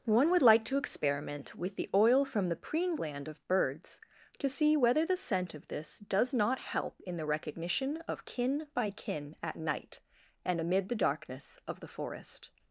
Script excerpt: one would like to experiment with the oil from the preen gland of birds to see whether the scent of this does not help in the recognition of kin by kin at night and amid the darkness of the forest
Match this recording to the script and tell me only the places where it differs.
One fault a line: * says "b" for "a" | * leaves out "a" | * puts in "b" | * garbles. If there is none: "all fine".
all fine